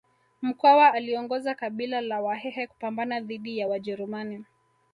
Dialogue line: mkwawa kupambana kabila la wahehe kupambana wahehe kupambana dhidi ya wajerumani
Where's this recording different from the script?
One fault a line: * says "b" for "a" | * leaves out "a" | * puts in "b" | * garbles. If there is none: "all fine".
* says "aliongoza" for "kupambana"
* leaves out "wahehe kupambana"